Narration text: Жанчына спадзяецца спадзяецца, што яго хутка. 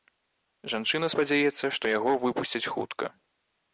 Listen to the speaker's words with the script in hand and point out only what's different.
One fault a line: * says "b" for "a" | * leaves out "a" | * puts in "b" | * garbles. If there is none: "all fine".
* leaves out "спадзяецца"
* puts in "выпусцяць"